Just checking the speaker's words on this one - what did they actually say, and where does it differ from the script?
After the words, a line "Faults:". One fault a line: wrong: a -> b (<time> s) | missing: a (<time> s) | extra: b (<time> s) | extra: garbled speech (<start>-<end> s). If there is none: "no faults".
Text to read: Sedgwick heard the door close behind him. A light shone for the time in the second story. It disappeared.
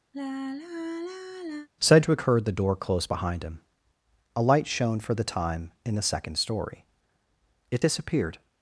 Sedgwick heard the door close behind him. A light shone for the time in the second story. It disappeared.
Faults:
no faults